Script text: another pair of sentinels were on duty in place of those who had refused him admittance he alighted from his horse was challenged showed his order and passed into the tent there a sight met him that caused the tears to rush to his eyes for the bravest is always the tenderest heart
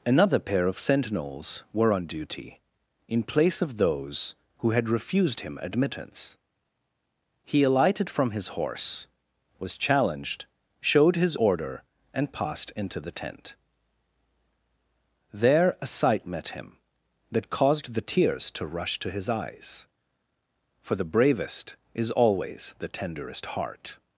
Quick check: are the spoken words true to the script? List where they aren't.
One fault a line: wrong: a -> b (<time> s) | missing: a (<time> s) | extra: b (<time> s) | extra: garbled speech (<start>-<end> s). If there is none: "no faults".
no faults